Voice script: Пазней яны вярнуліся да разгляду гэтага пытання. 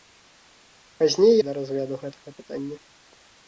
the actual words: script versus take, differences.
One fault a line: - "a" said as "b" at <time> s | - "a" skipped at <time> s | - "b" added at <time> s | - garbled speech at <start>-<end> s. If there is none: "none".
- "яны вярнуліся" skipped at 1.3 s